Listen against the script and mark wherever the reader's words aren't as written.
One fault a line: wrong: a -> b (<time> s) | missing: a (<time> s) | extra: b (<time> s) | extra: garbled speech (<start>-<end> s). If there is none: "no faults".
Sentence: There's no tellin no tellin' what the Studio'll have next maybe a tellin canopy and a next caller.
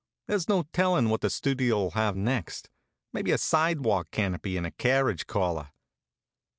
missing: no tellin (1.1 s)
wrong: tellin -> sidewalk (3.4 s)
wrong: next -> carriage (4.7 s)